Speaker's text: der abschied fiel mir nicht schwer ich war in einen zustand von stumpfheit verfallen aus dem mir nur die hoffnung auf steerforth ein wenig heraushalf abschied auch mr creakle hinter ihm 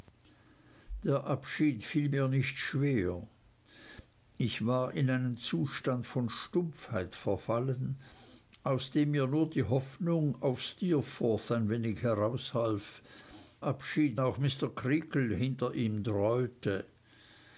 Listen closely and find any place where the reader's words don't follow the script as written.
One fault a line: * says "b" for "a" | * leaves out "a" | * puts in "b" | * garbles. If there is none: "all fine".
all fine